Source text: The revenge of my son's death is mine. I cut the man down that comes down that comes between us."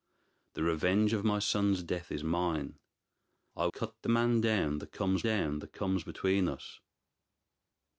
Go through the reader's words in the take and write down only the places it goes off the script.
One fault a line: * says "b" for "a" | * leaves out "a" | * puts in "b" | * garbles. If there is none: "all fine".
all fine